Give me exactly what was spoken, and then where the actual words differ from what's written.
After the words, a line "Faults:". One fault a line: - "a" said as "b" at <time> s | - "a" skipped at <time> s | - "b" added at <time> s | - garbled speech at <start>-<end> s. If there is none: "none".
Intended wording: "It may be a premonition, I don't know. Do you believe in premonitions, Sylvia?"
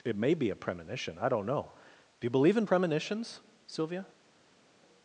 "It may be a premonition, I don't know. Do you believe in premonitions, Sylvia?"
Faults:
none